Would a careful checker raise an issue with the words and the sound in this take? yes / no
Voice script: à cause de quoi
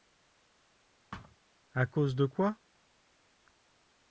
yes